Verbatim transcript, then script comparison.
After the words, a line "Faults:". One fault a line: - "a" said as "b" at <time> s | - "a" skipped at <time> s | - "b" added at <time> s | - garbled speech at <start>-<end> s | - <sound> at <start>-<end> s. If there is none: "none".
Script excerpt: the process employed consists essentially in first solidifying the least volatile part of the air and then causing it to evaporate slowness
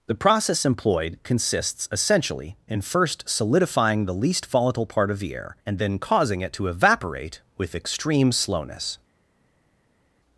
the process employed consists essentially in first solidifying the least volatile part of the air and then causing it to evaporate with extreme slowness
Faults:
- "with extreme" added at 7.6 s